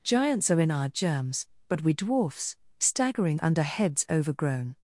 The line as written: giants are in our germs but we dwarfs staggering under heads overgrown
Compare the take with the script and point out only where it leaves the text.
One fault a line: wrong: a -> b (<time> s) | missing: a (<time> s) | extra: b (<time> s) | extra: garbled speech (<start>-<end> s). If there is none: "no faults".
no faults